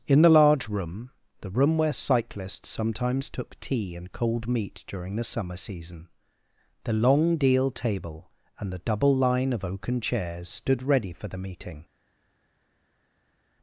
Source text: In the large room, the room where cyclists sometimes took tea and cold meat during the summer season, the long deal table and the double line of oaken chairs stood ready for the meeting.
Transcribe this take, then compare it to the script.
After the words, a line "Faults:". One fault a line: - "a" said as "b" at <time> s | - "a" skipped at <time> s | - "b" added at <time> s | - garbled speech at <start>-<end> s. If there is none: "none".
In the large room, the room where cyclists sometimes took tea and cold meat during the summer season, the long deal table and the double line of oaken chairs stood ready for the meeting.
Faults:
none